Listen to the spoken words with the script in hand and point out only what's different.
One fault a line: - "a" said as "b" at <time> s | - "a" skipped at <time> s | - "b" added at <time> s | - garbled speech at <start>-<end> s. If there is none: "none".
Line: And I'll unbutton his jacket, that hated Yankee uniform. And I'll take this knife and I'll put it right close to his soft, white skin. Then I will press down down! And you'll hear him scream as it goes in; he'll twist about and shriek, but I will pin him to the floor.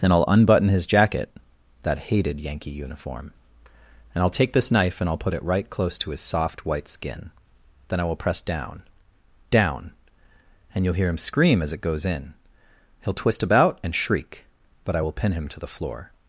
- "And" said as "Then" at 0.0 s